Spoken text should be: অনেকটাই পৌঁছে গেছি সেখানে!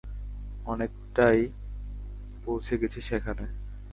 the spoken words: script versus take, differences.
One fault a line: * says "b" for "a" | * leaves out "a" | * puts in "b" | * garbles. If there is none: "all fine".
all fine